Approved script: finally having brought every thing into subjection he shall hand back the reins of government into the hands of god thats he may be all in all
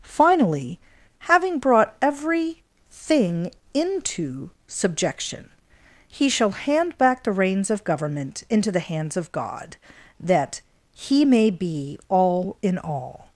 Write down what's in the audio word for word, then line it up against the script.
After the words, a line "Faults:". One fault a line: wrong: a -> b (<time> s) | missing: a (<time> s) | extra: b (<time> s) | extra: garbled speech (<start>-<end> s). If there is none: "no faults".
finally having brought every thing into subjection he shall hand back the reins of government into the hands of god that he may be all in all
Faults:
wrong: thats -> that (10.2 s)